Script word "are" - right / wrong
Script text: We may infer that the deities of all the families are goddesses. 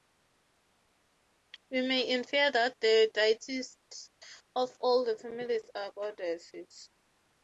right